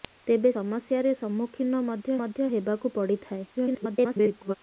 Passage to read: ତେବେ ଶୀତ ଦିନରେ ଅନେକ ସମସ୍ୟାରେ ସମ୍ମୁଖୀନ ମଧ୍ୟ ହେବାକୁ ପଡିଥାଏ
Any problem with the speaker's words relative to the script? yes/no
yes